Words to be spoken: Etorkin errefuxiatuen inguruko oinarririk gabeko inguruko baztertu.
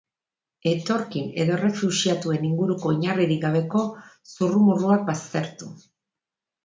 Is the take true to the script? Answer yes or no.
no